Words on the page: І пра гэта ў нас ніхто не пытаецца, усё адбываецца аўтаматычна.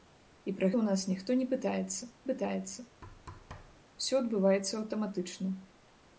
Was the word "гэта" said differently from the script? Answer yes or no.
yes